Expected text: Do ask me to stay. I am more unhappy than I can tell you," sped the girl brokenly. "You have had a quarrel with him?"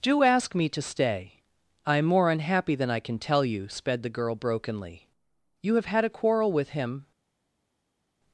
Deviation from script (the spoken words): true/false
false